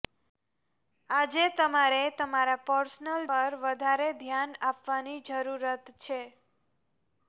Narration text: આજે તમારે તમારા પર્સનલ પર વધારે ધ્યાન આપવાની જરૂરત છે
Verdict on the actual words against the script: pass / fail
pass